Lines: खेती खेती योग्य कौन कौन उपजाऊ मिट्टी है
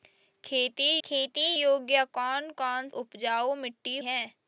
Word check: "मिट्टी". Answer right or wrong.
right